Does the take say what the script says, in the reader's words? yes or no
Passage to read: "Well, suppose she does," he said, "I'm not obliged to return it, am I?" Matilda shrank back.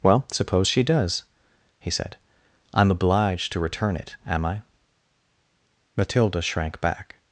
no